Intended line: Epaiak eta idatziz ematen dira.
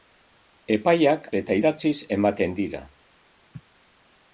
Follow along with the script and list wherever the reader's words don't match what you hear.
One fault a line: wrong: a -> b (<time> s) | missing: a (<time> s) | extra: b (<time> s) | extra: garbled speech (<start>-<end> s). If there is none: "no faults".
no faults